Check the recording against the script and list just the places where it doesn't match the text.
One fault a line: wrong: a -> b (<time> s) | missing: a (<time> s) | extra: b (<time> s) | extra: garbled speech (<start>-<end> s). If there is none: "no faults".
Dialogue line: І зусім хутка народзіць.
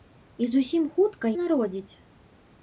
no faults